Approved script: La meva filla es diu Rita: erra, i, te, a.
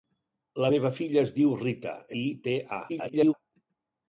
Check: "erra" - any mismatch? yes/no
yes